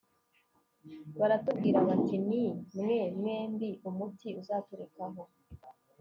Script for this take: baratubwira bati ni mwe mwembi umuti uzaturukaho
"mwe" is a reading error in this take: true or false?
false